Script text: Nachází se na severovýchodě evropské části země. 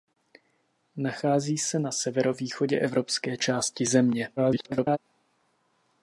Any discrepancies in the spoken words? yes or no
yes